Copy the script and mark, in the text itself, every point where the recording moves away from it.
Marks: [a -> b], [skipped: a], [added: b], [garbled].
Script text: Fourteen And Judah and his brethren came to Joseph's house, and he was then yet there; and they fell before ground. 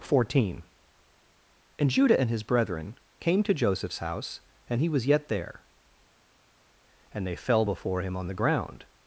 Fourteen And Judah and his brethren came to Joseph's house, and he was [skipped: then] yet there; and they fell before [added: him on the] ground.